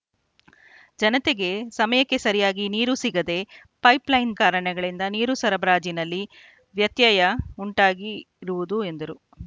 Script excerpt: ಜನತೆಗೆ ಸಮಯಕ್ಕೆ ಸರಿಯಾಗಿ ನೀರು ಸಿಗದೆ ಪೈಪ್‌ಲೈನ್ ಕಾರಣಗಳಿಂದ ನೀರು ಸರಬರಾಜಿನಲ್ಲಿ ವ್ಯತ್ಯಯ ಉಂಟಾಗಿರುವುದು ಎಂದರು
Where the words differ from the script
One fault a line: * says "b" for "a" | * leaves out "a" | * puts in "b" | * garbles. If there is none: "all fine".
all fine